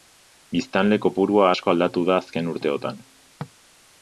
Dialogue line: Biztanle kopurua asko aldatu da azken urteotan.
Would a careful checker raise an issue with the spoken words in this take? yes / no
no